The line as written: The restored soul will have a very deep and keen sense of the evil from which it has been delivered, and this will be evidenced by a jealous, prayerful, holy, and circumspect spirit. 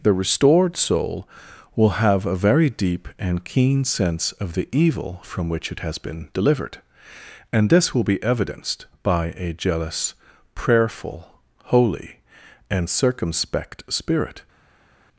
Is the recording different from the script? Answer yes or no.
no